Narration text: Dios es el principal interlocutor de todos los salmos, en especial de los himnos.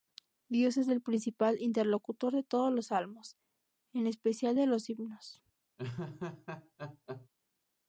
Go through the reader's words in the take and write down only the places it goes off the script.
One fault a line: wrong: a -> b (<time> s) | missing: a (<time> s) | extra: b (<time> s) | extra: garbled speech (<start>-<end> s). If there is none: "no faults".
no faults